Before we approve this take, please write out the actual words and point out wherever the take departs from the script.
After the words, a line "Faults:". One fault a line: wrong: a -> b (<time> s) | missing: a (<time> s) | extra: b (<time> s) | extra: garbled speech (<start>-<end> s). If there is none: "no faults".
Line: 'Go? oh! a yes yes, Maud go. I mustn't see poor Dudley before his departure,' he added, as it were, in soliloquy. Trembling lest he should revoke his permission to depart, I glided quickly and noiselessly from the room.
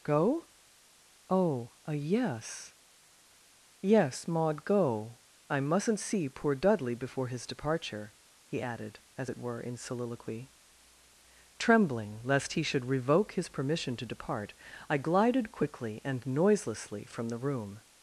'Go? oh! a yes yes, Maud go. I mustn't see poor Dudley before his departure,' he added, as it were, in soliloquy. Trembling lest he should revoke his permission to depart, I glided quickly and noiselessly from the room.
Faults:
no faults